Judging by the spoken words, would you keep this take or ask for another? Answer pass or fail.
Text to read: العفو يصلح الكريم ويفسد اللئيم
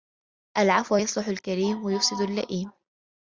pass